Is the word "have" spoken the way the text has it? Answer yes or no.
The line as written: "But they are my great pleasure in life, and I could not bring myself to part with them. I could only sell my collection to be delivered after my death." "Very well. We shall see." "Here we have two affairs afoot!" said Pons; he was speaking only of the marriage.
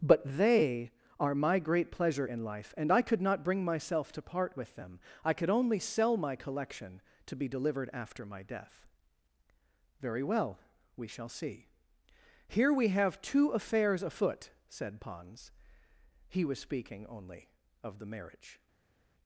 yes